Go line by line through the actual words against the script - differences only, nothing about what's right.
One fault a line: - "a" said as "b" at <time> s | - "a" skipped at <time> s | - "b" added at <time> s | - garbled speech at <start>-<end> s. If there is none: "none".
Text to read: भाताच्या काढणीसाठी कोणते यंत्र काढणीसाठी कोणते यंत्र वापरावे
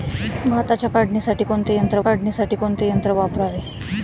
none